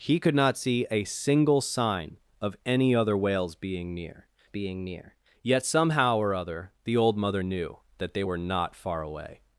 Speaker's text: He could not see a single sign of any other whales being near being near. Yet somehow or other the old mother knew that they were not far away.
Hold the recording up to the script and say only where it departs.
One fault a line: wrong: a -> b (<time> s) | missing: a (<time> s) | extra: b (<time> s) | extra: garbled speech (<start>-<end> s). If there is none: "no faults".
no faults